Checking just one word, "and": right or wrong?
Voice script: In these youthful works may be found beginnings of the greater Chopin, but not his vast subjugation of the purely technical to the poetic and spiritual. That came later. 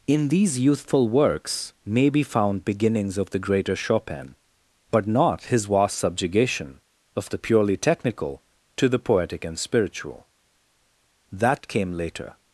right